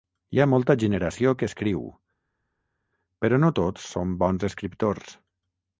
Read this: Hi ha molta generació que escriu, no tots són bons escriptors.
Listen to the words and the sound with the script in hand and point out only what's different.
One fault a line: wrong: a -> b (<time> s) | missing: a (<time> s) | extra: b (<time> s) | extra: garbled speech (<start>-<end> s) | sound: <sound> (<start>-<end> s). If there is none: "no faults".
extra: però (3.2 s)